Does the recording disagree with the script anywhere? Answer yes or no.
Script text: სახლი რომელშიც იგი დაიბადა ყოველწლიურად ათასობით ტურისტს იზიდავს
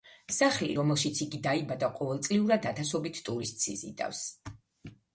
no